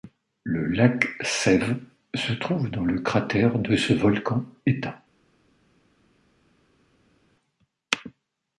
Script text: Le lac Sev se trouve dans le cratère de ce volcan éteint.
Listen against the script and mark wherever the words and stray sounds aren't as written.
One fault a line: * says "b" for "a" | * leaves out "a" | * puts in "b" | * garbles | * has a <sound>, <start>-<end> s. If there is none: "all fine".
all fine